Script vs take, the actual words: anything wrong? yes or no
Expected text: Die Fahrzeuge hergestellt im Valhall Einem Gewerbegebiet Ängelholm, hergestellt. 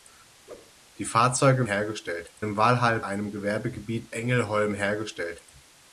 no